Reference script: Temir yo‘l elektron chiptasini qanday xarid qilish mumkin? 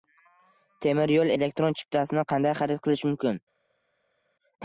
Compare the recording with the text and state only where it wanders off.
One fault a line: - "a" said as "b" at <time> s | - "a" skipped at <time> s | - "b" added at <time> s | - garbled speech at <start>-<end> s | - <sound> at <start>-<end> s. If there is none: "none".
none